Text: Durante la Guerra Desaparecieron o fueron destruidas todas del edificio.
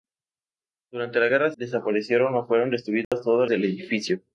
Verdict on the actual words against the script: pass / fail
pass